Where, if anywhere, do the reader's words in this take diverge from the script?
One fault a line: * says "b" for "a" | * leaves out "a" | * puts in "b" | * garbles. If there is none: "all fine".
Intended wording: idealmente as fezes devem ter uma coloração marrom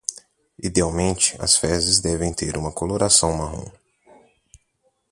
all fine